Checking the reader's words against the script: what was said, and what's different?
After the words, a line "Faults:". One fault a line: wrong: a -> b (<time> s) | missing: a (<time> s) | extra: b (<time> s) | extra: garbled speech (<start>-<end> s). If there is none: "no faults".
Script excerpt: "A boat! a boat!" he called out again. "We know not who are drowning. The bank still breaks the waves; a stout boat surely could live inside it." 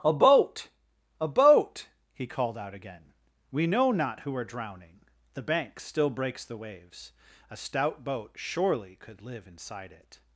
"A boat! a boat!" he called out again. "We know not who are drowning. The bank still breaks the waves; a stout boat surely could live inside it."
Faults:
no faults